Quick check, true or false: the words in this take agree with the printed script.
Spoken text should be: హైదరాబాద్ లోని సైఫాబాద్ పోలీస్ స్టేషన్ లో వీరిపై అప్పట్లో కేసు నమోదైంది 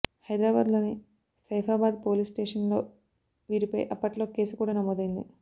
false